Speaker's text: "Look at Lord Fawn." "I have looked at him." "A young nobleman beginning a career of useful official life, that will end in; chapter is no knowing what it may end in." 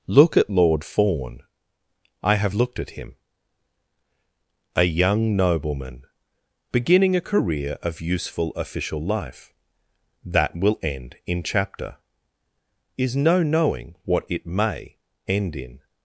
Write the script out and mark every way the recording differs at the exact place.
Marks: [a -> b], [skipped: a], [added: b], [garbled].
"Look at Lord Fawn." "I have looked at him." "A young nobleman beginning a career of useful official life, that will end in; chapter is no knowing what it may end in."